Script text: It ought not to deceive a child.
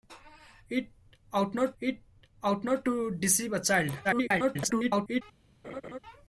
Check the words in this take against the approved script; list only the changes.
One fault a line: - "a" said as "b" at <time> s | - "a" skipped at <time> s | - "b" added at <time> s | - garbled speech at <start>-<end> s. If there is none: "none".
- "it ought not" added at 1.8 s
- garbled speech at 4.0-5.2 s